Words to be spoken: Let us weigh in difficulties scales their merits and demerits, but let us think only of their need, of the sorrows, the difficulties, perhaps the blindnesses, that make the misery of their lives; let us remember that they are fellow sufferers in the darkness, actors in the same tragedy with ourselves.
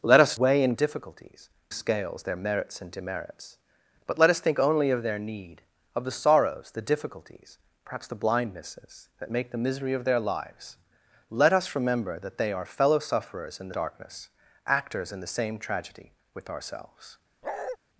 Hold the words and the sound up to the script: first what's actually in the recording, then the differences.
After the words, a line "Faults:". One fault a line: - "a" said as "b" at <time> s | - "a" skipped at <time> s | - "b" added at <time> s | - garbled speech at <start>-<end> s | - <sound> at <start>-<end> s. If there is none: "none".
Let us weigh in difficulties scales their merits and demerits, but let us think only of their need, of the sorrows, the difficulties, perhaps the blindnesses, that make the misery of their lives; let us remember that they are fellow sufferers in the darkness, actors in the same tragedy with ourselves.
Faults:
- bark at 17.4-17.8 s